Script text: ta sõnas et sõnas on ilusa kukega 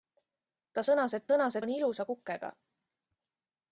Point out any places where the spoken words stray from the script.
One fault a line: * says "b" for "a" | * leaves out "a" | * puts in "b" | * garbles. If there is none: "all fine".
all fine